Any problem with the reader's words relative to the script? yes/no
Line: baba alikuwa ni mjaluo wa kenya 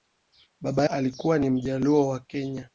no